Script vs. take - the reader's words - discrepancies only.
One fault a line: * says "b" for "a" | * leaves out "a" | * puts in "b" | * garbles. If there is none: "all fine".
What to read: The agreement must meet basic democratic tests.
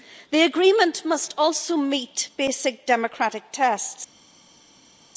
* puts in "also"